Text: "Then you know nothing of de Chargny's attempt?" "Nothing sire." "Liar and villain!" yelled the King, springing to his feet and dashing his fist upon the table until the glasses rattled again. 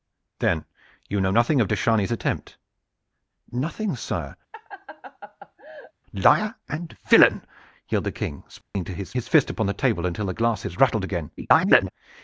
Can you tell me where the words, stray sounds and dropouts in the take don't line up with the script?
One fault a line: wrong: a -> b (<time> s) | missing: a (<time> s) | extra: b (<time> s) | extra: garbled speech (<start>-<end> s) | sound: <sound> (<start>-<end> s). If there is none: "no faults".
sound: laugh (4.5-5.9 s)
sound: dropout (8.6-8.8 s)
missing: feet and dashing (9.1 s)
extra: garbled speech (11.4-11.9 s)